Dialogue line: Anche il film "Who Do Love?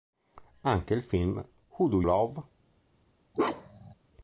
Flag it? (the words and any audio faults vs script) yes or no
yes